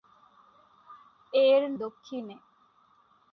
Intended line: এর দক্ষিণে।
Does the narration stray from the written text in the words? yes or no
no